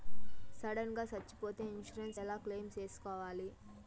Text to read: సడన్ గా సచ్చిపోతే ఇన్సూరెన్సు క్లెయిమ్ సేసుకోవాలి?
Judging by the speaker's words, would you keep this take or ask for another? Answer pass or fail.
fail